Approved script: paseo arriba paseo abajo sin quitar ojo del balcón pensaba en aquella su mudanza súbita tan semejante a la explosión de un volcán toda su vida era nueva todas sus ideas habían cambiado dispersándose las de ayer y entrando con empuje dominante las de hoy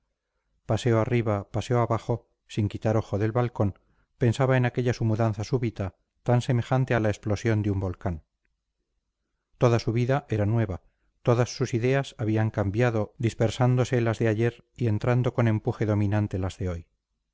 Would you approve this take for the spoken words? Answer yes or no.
yes